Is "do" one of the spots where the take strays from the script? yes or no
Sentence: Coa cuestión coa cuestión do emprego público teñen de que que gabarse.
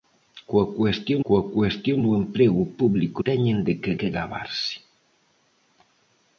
no